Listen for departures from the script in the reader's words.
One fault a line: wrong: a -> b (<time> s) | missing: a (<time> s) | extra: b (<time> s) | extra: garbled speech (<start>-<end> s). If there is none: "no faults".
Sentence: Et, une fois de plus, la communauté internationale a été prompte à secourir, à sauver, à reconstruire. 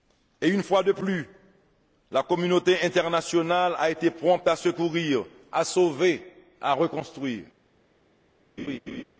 no faults